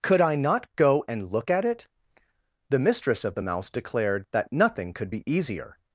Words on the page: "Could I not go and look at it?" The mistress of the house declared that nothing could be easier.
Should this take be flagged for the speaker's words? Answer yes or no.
yes